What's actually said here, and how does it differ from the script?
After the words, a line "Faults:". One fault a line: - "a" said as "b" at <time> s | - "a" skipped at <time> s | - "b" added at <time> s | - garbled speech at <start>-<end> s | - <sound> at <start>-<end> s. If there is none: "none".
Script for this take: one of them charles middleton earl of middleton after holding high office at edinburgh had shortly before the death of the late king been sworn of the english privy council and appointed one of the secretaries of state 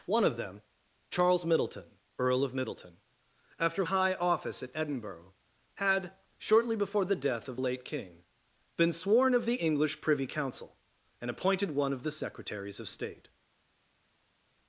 one of them charles middleton earl of middleton after high office at edinburgh had shortly before the death of late king been sworn of the english privy council and appointed one of the secretaries of state
Faults:
- "holding" skipped at 3.9 s
- "the" skipped at 7.6 s